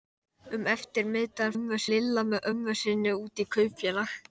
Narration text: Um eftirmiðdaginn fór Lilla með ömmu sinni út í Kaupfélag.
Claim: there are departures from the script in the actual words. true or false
true